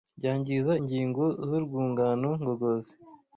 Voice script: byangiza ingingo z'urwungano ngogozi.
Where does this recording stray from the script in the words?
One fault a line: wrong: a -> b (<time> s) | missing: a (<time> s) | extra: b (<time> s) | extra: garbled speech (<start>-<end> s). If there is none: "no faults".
no faults